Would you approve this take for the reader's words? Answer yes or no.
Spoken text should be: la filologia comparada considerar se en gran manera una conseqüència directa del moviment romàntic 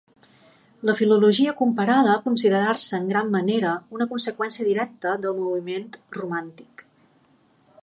yes